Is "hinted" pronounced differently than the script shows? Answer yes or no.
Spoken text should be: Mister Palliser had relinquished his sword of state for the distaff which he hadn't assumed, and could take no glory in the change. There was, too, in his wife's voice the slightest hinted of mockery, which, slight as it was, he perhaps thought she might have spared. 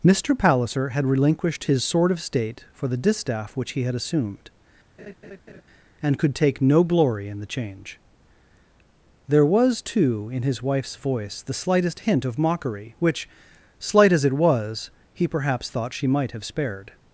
yes